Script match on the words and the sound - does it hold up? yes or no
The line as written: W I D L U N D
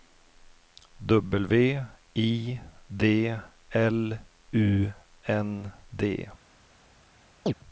no